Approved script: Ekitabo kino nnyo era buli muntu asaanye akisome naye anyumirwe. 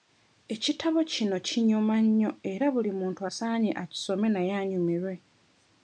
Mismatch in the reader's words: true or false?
true